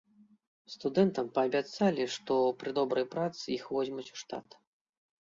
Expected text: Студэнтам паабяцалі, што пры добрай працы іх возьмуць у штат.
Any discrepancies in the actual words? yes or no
no